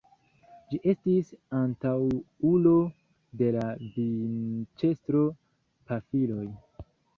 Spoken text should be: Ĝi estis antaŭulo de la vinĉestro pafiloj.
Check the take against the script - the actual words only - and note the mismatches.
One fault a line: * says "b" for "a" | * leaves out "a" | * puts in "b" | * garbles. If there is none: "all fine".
all fine